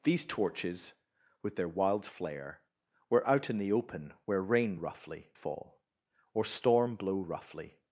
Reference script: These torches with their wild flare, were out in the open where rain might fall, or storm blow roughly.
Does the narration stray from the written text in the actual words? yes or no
yes